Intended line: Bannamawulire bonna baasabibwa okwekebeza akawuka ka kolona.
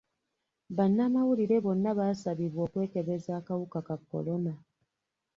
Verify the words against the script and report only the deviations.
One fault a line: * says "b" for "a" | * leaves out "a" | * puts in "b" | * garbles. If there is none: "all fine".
all fine